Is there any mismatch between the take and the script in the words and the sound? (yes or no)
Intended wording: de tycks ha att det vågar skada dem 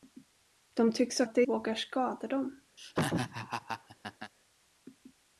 yes